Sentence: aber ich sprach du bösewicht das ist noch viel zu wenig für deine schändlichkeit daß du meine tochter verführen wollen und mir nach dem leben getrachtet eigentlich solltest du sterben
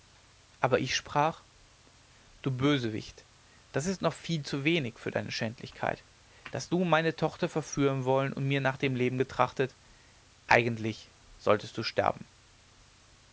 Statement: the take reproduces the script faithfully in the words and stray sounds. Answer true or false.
true